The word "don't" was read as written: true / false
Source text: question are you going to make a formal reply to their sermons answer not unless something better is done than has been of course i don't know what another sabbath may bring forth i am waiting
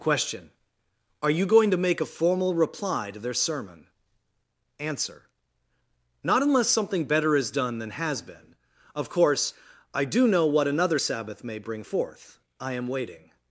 false